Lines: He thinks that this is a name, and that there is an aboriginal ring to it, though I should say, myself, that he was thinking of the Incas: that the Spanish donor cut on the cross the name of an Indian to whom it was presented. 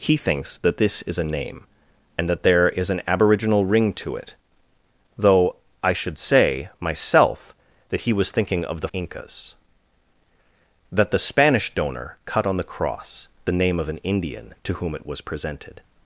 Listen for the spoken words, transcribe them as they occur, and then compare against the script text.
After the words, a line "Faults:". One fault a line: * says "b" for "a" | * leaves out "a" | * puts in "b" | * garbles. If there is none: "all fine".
He thinks that this is a name, and that there is an aboriginal ring to it, though I should say, myself, that he was thinking of the Incas: that the Spanish donor cut on the cross the name of an Indian to whom it was presented.
Faults:
all fine